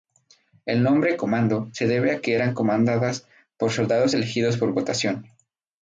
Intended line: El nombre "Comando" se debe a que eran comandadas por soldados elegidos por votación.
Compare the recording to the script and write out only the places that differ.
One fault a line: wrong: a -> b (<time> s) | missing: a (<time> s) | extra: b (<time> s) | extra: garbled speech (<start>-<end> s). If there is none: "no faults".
no faults